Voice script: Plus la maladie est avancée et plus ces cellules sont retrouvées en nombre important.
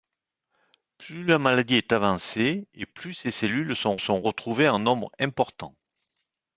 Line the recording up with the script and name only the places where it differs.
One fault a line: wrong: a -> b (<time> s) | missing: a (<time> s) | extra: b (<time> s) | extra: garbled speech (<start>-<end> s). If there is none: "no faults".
extra: sont (4.0 s)